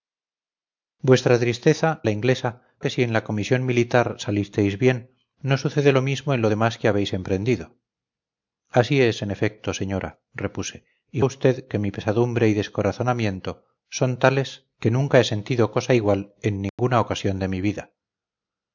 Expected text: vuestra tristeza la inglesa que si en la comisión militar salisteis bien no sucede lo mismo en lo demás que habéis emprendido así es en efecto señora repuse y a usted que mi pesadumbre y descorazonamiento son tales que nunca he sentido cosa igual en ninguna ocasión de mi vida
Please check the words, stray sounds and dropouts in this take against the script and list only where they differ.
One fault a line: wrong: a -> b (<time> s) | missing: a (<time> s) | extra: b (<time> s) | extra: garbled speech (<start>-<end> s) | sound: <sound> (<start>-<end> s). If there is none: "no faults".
sound: dropout (16.7-16.8 s)